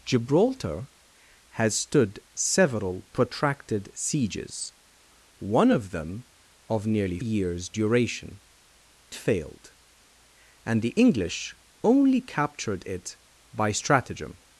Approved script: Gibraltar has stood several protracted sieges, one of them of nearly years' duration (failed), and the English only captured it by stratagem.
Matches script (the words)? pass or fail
pass